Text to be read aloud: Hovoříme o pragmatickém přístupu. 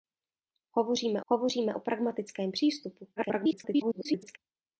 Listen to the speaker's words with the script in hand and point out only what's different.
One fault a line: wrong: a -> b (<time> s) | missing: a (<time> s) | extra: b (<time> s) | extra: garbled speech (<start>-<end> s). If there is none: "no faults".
extra: hovoříme (1.3 s)
extra: garbled speech (3.2-4.4 s)